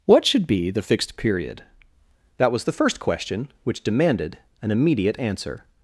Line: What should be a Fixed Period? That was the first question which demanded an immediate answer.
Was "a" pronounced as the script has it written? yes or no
no